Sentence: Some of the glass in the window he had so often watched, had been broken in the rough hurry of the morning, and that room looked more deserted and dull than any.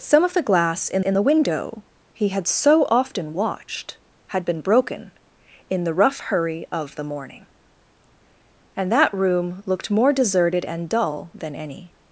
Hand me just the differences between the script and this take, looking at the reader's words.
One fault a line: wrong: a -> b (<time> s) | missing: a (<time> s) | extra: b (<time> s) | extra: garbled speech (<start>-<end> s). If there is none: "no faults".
extra: in (1.0 s)